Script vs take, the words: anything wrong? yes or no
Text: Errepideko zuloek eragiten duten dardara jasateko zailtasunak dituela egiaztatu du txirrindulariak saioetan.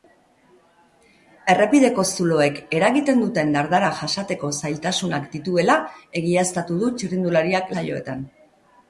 no